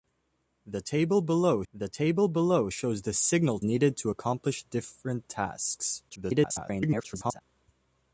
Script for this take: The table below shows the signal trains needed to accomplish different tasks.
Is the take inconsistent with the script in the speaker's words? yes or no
yes